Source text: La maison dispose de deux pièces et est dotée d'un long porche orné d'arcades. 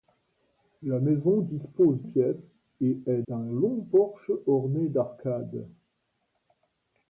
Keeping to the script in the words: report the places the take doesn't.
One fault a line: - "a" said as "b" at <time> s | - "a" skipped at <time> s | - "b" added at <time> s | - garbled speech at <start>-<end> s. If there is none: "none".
- "de deux" skipped at 2.0 s
- "dotée" skipped at 3.2 s